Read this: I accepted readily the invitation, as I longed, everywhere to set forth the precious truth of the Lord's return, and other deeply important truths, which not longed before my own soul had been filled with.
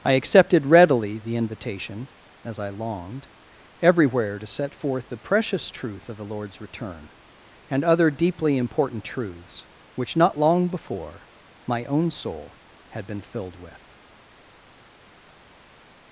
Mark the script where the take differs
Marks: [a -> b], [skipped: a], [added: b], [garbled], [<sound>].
I accepted readily the invitation, as I longed, everywhere to set forth the precious truth of the Lord's return, and other deeply important truths, which not [longed -> long] before my own soul had been filled with.